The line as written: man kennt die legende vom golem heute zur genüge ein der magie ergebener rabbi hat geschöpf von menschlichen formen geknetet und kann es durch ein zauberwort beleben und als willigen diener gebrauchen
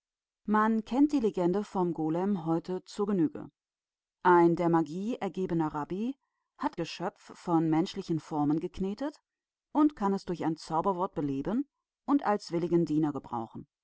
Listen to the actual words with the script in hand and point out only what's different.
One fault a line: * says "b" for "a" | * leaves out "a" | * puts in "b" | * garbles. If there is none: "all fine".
all fine